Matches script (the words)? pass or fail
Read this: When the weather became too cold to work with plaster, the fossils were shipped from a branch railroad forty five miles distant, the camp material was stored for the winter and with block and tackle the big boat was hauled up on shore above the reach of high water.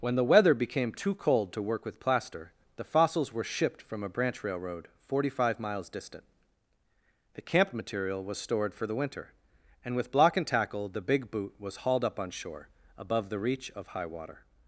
fail